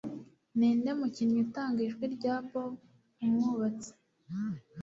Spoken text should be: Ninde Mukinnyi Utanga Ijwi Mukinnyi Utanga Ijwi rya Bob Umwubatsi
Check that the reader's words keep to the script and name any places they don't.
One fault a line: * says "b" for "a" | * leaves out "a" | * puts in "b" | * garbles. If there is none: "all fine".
* leaves out "Mukinnyi Utanga Ijwi"